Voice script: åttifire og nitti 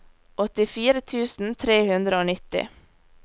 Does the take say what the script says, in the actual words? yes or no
no